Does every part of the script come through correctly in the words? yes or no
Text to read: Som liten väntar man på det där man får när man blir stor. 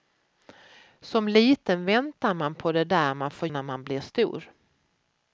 yes